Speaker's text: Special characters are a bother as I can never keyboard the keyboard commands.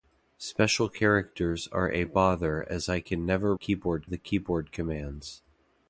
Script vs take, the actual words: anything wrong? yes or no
no